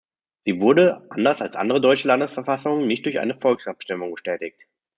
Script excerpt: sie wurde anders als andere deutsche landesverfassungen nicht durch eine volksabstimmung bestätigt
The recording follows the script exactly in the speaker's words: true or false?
true